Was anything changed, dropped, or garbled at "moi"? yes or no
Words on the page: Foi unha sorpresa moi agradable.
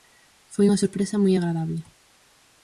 no